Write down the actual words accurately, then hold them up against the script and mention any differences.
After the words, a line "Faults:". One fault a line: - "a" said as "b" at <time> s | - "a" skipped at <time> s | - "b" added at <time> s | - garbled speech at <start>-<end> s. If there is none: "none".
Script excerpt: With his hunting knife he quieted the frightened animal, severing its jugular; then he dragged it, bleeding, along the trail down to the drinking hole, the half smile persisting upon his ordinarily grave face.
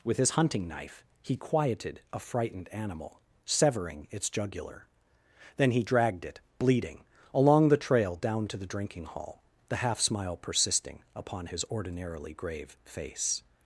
With his hunting knife he quieted a frightened animal, severing its jugular; then he dragged it, bleeding, along the trail down to the drinking hall, the half smile persisting upon his ordinarily grave face.
Faults:
- "the" said as "a" at 2.1 s
- "hole" said as "hall" at 9.1 s